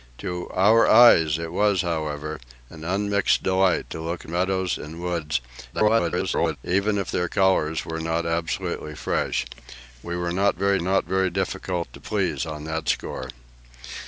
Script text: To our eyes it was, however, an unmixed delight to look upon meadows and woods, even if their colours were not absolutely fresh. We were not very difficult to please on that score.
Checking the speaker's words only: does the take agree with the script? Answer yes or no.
no